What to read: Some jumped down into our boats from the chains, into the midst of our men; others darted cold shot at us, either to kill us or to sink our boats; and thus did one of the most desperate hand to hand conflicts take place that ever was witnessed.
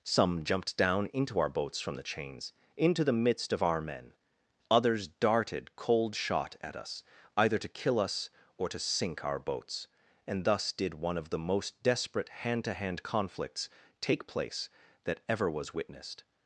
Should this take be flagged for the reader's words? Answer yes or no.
no